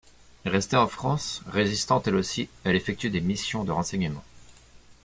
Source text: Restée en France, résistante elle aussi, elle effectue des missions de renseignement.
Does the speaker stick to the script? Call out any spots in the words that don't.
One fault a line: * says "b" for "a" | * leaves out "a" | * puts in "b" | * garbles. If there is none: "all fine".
all fine